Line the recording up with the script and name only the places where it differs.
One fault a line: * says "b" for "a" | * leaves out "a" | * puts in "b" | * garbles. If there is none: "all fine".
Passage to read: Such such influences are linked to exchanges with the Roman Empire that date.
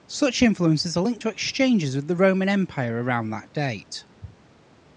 * leaves out "such"
* puts in "around"